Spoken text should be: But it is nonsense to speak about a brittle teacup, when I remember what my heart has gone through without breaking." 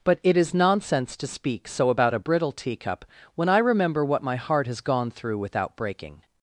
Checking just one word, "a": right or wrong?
right